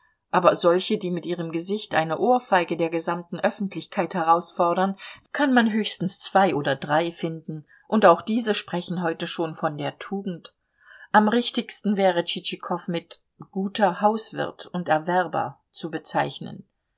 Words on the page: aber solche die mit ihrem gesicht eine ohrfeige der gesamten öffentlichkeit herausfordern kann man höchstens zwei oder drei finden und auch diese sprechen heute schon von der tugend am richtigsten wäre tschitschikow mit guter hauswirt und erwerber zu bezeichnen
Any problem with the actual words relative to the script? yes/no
no